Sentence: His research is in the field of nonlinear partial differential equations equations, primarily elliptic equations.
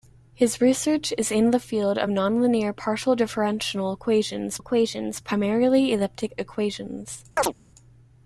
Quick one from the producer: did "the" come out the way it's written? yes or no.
yes